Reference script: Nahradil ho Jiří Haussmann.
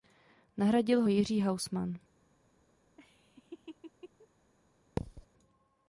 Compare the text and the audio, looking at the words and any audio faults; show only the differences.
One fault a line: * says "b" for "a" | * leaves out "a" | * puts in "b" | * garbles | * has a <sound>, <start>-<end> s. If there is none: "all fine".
* has a laugh, 3.0-4.3 s
* has a thud, 5.0-5.3 s